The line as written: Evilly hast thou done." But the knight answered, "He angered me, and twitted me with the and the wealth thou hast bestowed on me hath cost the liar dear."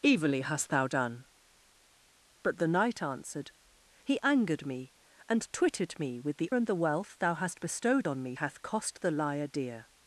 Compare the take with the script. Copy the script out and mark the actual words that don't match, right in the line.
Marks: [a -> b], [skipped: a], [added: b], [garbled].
Evilly hast thou done." But the knight answered, "He angered me, and twitted me with the and the wealth thou hast bestowed on me hath cost the liar dear."